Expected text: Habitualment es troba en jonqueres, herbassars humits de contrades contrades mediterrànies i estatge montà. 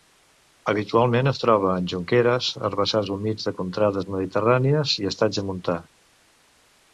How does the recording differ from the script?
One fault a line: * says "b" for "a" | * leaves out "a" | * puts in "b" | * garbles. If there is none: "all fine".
* leaves out "contrades"